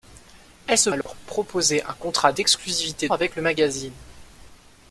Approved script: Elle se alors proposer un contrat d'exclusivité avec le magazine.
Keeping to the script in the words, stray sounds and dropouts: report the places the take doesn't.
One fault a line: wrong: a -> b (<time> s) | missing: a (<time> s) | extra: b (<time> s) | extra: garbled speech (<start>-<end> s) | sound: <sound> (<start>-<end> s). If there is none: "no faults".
sound: dropout (1.0-1.1 s)